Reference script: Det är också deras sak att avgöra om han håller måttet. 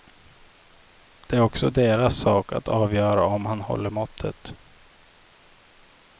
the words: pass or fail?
pass